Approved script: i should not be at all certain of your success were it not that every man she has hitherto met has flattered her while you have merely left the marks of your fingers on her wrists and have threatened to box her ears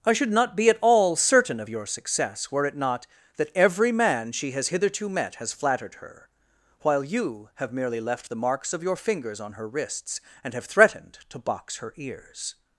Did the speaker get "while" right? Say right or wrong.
right